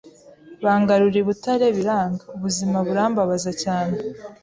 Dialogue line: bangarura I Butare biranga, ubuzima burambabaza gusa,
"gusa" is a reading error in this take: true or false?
true